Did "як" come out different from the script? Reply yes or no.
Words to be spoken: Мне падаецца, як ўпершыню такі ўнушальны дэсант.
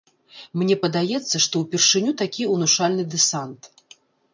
yes